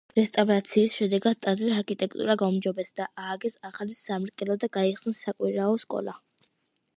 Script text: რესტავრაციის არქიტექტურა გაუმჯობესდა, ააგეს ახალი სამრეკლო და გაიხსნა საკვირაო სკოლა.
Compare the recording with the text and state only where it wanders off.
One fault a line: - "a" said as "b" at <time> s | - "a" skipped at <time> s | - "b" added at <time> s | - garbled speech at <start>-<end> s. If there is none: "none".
- "შედეგად ტაძრის" added at 1.0 s